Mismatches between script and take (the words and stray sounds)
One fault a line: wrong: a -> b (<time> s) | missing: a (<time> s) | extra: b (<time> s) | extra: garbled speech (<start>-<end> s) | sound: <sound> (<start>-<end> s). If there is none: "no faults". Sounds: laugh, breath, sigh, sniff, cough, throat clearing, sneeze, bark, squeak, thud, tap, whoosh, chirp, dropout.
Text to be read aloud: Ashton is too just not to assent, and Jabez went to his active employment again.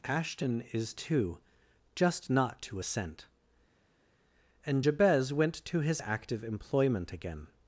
no faults